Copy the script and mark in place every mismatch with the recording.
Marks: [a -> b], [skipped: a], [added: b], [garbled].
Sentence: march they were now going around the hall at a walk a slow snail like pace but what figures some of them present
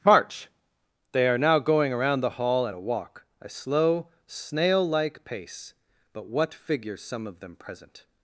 march they [were -> are] now going around the hall at a walk a slow snail like pace but what figures some of them present